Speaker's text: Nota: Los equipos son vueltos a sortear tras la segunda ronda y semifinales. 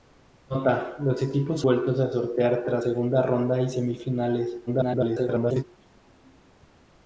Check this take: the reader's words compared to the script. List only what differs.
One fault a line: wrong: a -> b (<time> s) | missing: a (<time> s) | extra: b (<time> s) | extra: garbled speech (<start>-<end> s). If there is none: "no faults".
missing: son (1.6 s)
missing: la (2.8 s)
extra: garbled speech (4.7-5.6 s)